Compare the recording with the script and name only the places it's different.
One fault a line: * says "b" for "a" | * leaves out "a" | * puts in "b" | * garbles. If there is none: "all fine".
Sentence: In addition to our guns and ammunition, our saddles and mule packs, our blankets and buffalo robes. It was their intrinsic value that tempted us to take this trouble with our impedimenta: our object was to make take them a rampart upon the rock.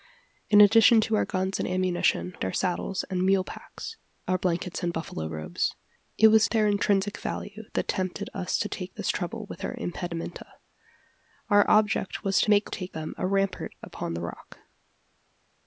all fine